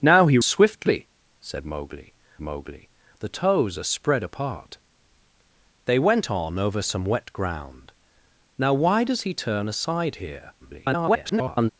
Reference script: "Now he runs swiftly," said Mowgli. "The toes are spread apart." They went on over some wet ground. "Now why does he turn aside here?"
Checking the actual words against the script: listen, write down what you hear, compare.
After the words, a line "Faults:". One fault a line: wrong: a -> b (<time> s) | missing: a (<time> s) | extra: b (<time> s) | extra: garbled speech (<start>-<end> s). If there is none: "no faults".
"Now he swiftly," said Mowgli Mowgli. "The toes are spread apart." They went on over some wet ground. "Now why does he turn aside here?" [garbled]
Faults:
missing: runs (0.4 s)
extra: Mowgli (2.4 s)
extra: garbled speech (10.6-11.7 s)